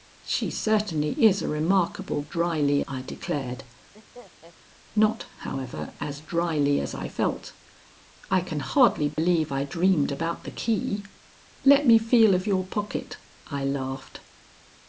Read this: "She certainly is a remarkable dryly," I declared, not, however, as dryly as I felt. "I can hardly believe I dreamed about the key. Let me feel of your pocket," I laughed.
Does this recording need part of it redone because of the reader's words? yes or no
no